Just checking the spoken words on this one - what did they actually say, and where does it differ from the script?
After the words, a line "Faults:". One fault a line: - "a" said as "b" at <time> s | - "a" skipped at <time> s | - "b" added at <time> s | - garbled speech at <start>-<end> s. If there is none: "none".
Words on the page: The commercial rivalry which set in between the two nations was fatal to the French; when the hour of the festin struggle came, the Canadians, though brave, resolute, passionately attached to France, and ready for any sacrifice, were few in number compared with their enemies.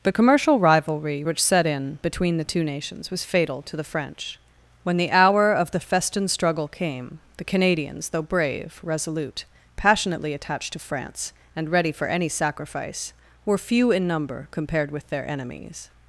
The commercial rivalry which set in between the two nations was fatal to the French; when the hour of the festin struggle came, the Canadians, though brave, resolute, passionately attached to France, and ready for any sacrifice, were few in number compared with their enemies.
Faults:
none